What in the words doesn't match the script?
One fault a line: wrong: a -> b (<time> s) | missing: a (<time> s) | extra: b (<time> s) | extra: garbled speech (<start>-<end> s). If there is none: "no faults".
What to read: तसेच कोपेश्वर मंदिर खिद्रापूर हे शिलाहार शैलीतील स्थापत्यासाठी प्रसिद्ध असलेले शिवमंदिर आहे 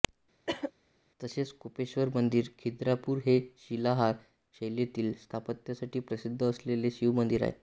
no faults